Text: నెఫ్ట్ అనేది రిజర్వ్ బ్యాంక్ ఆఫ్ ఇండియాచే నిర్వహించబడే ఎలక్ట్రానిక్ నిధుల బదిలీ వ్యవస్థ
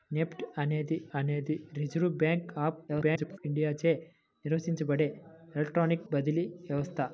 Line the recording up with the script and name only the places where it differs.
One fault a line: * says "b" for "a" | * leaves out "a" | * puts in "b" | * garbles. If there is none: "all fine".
* puts in "అనేది"
* garbles
* leaves out "నిధుల"